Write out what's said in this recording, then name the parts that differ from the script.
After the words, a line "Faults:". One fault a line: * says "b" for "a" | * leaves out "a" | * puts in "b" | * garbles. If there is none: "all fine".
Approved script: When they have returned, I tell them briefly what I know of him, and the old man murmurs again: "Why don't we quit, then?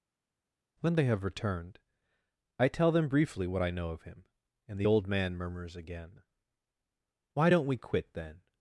When they have returned, I tell them briefly what I know of him, and the old man murmurs again: "Why don't we quit, then?
Faults:
all fine